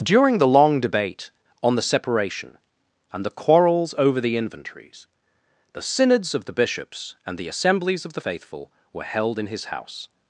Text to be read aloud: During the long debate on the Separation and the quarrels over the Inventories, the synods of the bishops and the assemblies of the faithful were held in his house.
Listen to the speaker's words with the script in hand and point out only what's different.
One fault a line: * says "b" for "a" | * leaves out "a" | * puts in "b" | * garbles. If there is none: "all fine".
all fine